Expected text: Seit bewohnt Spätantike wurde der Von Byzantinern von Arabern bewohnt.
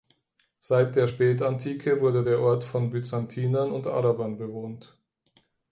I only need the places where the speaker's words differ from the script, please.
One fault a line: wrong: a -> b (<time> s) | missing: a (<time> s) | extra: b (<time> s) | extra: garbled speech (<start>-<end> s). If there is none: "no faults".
wrong: bewohnt -> der (0.9 s)
extra: Ort (2.4 s)
wrong: von -> und (3.7 s)